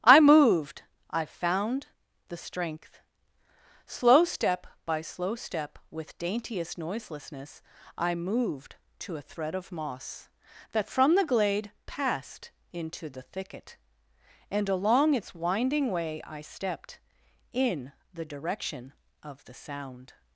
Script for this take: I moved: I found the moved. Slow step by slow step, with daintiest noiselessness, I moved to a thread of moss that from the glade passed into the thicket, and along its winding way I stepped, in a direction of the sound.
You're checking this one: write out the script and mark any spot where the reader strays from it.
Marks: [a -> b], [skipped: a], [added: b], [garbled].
I moved: I found the [moved. -> strength] Slow step by slow step, with daintiest noiselessness, I moved to a thread of moss that from the glade passed into the thicket, and along its winding way I stepped, in [a -> the] direction of the sound.